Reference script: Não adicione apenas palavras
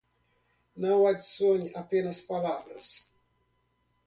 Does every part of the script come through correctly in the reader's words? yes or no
yes